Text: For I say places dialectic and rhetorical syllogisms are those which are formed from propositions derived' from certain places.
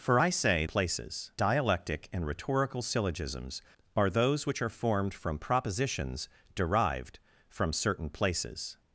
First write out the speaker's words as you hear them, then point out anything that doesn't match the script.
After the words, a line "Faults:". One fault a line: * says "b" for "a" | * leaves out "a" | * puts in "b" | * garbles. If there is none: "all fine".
For I say places dialectic and rhetorical syllogisms are those which are formed from propositions derived' from certain places.
Faults:
all fine